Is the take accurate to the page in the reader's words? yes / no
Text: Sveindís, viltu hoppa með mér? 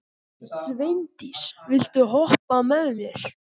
yes